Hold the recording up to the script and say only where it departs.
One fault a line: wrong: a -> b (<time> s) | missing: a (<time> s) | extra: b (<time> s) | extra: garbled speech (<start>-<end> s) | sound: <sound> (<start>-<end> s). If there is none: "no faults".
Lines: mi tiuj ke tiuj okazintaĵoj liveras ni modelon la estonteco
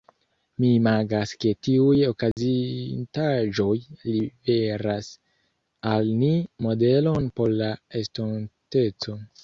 wrong: tiuj -> imagas (0.8 s)
sound: dropout (2.3-2.4 s)
extra: al (6.0 s)
extra: por (7.4 s)